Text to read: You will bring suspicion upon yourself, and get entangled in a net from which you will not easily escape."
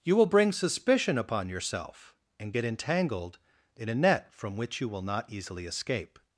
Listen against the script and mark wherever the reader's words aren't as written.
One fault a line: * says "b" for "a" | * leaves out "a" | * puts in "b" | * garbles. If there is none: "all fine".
all fine